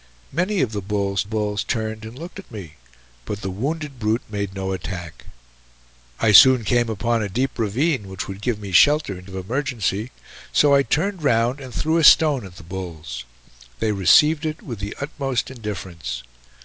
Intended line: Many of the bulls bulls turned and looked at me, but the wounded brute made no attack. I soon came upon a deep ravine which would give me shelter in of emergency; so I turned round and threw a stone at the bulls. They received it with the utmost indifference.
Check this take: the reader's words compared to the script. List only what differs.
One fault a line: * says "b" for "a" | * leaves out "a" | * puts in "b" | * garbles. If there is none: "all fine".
all fine